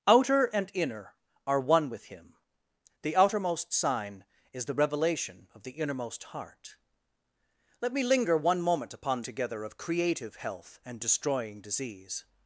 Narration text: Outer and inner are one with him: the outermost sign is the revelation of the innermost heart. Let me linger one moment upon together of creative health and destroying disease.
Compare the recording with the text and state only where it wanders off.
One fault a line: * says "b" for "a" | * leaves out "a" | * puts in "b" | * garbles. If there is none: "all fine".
all fine